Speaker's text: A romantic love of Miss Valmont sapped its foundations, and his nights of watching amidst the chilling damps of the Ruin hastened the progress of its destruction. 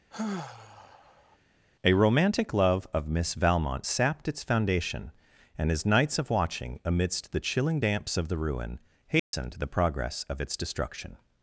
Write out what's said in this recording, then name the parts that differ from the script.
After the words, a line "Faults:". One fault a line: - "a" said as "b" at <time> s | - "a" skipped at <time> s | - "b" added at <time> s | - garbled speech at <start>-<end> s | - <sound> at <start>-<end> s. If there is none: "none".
A romantic love of Miss Valmont sapped its foundation, and his nights of watching amidst the chilling damps of the Ruin hastened the progress of its destruction.
Faults:
- sigh at 0.1-1.4 s
- "foundations" said as "foundation" at 4.4 s
- dropout at 9.2-9.3 s